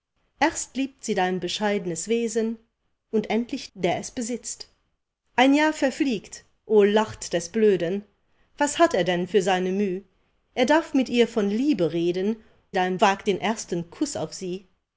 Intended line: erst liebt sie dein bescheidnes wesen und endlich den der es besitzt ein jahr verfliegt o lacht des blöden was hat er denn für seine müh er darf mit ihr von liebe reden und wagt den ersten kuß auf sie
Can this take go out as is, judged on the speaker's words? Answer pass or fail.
fail